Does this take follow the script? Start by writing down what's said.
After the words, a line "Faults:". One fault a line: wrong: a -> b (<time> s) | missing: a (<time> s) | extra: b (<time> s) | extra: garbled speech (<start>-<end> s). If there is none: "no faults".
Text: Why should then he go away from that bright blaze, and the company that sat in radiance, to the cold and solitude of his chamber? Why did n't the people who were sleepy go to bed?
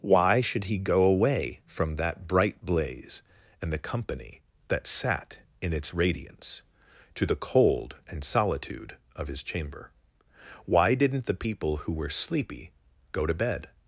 Why should he go away from that bright blaze, and the company that sat in its radiance, to the cold and solitude of his chamber? Why did n't the people who were sleepy go to bed?
Faults:
missing: then (0.6 s)
extra: its (5.7 s)